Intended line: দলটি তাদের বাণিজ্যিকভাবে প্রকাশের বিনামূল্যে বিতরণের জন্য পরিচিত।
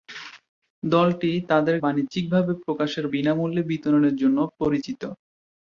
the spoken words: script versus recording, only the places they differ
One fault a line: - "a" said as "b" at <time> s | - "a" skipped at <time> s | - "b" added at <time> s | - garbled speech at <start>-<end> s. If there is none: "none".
none